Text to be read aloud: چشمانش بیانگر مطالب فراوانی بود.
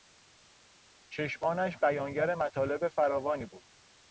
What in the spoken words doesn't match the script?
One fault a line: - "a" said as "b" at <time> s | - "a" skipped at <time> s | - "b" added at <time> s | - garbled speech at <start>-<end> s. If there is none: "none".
none